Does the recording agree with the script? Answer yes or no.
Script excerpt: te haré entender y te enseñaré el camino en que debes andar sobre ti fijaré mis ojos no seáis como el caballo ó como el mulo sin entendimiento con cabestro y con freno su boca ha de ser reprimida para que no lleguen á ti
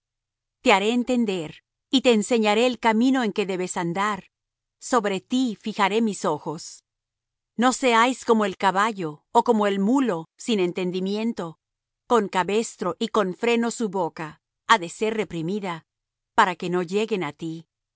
yes